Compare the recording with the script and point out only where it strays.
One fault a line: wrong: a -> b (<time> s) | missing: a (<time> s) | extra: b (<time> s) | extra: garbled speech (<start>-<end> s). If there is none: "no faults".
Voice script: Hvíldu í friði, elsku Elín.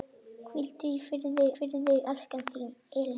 extra: friði (1.5 s)